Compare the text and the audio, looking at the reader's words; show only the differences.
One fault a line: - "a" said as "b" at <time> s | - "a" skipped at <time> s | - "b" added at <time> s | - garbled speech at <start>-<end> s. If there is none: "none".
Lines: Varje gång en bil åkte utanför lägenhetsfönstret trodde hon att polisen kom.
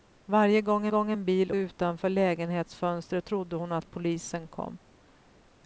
- "gång" added at 0.9 s
- "åkte" skipped at 1.5 s